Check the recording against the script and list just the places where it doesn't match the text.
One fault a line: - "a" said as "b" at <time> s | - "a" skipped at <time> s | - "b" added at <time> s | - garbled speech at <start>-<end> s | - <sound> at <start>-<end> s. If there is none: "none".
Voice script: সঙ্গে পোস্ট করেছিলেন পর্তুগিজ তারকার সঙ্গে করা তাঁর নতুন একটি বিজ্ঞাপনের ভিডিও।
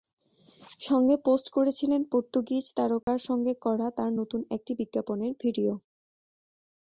- dropout at 3.0-3.1 s